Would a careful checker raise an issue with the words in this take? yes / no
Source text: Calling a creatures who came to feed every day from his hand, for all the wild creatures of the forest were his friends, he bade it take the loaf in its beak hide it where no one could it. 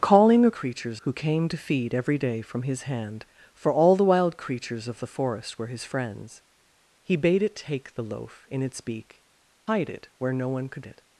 no